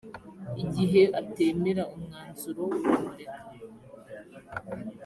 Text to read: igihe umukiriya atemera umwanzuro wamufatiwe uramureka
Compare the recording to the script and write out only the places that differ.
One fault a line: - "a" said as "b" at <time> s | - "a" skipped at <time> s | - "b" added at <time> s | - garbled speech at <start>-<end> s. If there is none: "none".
- "umukiriya" skipped at 1.0 s
- "wamufatiwe" skipped at 2.6 s